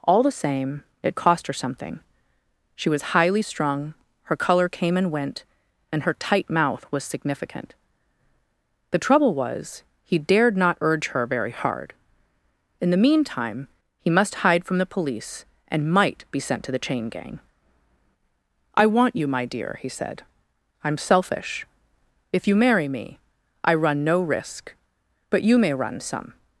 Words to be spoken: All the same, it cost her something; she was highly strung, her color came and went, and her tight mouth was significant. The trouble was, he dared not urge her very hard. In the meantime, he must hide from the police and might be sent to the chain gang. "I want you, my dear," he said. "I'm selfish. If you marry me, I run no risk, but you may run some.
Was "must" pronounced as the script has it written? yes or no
yes